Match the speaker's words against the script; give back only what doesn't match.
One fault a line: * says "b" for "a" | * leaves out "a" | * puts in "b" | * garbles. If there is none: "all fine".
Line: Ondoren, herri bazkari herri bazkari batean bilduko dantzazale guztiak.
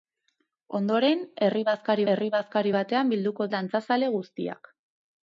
all fine